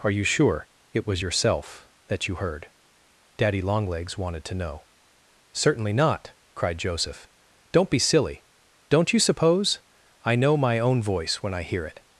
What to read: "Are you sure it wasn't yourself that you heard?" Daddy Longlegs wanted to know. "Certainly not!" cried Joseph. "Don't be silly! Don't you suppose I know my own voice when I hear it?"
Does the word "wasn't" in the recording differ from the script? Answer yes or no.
yes